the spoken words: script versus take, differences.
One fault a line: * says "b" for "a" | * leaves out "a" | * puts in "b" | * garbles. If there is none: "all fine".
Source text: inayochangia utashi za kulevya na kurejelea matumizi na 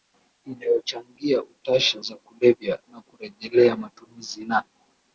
all fine